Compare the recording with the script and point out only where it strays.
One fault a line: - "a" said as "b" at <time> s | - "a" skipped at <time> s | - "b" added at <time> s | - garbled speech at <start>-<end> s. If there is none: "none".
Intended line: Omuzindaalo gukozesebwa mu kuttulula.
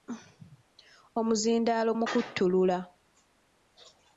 - "gukozesebwa" skipped at 1.9 s